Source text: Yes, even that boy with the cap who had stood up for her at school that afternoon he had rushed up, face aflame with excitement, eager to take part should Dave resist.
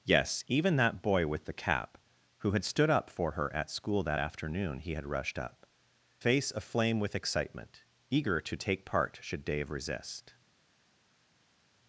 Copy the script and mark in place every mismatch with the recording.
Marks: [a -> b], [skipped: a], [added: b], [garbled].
Yes, even that boy with the cap who had stood up for her at school that afternoon he had rushed up, face aflame with excitement, eager to take part should Dave resist.